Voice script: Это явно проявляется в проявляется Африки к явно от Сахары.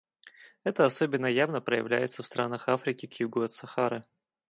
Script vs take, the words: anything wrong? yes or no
yes